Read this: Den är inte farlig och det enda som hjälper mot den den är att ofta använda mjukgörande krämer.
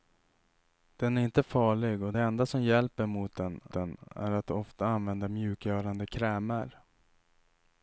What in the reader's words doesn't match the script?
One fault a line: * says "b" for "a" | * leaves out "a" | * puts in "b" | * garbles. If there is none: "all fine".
all fine